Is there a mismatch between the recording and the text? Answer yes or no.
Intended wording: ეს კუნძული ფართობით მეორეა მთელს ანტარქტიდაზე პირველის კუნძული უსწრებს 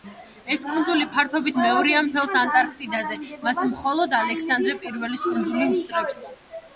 yes